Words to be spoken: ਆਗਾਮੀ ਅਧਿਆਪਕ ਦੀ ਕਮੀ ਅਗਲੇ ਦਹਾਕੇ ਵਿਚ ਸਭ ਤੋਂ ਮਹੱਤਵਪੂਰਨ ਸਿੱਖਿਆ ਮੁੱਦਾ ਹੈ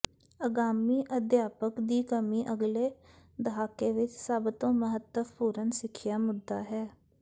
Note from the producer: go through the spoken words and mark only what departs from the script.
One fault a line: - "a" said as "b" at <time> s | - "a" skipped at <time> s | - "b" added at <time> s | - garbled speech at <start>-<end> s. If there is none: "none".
none